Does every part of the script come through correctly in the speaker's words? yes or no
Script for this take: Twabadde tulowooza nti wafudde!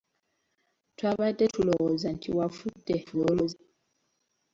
no